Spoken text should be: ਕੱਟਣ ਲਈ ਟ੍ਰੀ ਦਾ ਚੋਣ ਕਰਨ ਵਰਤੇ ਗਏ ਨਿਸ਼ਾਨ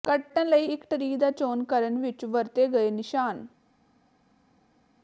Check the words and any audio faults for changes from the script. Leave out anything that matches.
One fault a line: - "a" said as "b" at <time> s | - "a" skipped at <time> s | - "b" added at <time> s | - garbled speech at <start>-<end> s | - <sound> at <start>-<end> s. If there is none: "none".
- "ਇੱਕ" added at 0.6 s
- "ਵਿੱਚ" added at 2.0 s